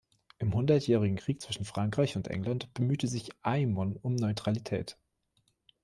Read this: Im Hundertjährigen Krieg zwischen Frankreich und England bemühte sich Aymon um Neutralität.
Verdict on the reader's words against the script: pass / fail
pass